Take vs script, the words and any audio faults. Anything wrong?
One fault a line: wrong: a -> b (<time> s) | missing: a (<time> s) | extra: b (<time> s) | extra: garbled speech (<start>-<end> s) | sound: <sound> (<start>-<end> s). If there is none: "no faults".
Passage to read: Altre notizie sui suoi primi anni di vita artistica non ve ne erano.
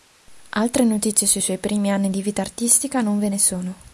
wrong: erano -> sono (3.4 s)